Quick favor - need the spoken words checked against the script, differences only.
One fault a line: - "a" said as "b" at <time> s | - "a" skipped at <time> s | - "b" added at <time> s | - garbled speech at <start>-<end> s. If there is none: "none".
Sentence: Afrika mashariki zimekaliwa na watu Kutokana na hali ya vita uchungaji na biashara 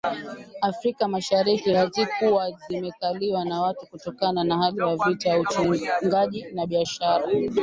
- "hazikuwa" added at 1.7 s